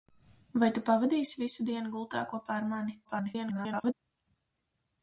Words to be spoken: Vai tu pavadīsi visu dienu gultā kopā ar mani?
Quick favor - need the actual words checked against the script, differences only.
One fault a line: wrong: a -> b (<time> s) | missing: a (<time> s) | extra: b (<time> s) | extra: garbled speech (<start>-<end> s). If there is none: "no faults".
extra: garbled speech (3.0-3.9 s)